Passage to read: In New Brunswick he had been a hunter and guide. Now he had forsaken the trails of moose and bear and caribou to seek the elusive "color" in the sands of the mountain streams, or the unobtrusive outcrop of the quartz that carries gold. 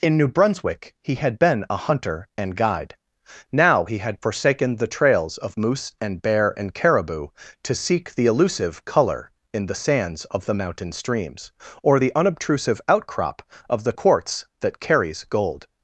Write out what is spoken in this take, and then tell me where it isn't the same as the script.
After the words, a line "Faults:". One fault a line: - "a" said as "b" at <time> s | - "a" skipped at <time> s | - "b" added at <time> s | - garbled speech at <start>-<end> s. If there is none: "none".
In New Brunswick he had been a hunter and guide. Now he had forsaken the trails of moose and bear and caribou to seek the elusive "color" in the sands of the mountain streams, or the unobtrusive outcrop of the quartz that carries gold.
Faults:
none